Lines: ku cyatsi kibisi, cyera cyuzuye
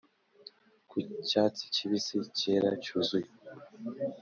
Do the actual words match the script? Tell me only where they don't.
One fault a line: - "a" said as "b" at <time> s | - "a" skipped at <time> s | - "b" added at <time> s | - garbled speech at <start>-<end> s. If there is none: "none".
none